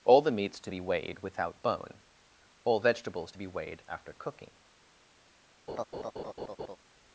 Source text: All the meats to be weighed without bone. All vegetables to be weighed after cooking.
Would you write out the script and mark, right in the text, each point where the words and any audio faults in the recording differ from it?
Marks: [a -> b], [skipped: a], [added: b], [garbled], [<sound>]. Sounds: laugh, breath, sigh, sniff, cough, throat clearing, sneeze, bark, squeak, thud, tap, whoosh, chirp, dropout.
All the meats to be weighed without bone. All vegetables to be weighed after cooking. [laugh]